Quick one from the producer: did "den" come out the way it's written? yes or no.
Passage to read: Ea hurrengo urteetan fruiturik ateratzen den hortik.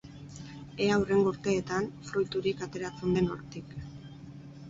yes